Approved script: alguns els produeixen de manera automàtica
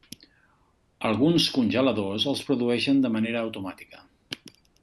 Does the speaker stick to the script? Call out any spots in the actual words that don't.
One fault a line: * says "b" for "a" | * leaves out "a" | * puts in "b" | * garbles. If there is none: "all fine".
* puts in "congeladors"